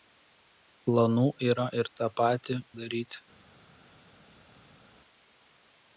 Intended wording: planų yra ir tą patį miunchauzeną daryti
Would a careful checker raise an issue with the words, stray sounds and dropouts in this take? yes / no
yes